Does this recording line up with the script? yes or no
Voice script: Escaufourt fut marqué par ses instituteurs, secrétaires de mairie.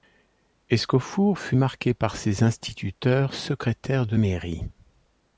yes